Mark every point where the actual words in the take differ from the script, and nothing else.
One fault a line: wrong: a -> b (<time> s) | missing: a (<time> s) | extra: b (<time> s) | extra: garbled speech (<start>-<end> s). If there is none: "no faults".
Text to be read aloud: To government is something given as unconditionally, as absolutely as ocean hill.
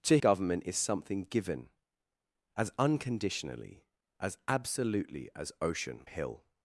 no faults